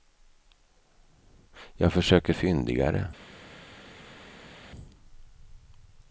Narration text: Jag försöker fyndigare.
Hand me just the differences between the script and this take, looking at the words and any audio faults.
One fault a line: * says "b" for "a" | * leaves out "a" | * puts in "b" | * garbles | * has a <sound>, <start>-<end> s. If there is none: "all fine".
all fine